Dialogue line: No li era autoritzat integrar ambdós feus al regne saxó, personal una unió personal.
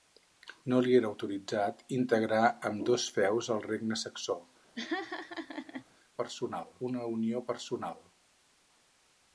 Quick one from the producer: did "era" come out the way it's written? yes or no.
yes